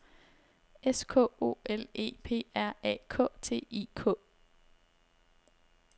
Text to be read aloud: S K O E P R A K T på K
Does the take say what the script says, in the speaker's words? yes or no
no